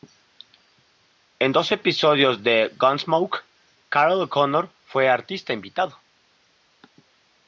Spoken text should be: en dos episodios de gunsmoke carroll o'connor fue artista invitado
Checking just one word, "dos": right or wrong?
right